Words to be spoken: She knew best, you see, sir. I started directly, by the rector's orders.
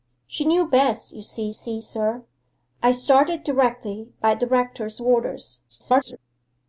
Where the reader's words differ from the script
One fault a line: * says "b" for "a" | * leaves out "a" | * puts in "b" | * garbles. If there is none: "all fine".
* puts in "see"
* garbles